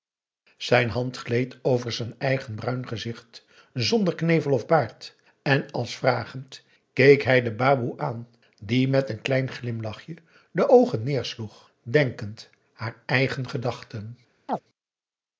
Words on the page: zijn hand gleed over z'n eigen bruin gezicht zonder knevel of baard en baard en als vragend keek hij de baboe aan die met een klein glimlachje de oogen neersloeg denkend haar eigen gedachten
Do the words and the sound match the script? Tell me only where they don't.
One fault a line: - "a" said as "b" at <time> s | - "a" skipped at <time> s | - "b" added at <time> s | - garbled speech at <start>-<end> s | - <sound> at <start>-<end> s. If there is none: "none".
- "baard en" skipped at 5.7 s
- chirp at 14.5-14.6 s